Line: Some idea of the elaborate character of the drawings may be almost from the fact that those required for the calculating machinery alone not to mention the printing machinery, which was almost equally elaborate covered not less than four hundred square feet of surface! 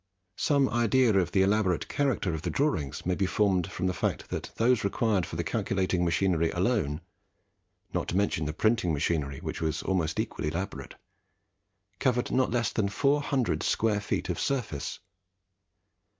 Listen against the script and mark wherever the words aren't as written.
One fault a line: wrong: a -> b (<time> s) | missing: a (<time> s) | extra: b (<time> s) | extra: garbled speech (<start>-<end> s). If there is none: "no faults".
wrong: almost -> formed (3.3 s)